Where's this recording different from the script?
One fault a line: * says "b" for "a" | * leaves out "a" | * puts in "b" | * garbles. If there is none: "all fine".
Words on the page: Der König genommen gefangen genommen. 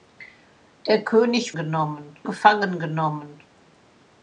all fine